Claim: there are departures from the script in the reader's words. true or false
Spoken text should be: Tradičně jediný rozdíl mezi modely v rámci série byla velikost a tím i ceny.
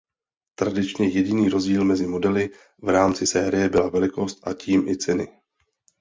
false